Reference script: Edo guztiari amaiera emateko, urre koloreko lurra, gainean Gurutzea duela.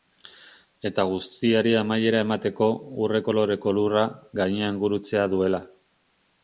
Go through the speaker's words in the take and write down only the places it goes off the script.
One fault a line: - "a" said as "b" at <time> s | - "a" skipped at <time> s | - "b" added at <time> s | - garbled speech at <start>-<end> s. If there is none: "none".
- "Edo" said as "Eta" at 0.9 s